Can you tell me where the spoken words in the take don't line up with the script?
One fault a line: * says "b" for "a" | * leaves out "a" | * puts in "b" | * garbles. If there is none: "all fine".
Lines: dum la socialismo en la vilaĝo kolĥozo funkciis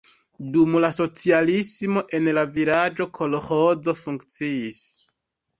all fine